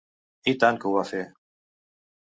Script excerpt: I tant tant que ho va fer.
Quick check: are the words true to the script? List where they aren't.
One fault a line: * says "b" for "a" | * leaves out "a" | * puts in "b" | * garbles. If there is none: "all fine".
* leaves out "tant"